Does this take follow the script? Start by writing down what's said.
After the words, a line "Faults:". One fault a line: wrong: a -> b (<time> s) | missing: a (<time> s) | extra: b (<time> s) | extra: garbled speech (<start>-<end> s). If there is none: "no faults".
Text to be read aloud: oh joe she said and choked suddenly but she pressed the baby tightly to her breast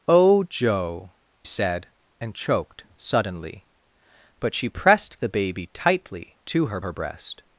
oh joe said and choked suddenly but she pressed the baby tightly to her her breast
Faults:
missing: she (1.1 s)
extra: her (6.8 s)